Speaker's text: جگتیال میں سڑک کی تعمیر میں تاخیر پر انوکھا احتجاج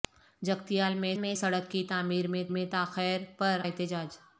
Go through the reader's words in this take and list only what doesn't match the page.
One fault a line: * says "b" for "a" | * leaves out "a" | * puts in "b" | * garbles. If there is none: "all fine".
* puts in "میں"
* puts in "میں"
* leaves out "انوکھا"